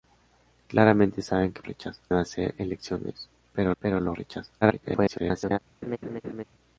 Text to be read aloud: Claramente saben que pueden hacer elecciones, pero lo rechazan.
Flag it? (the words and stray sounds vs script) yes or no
yes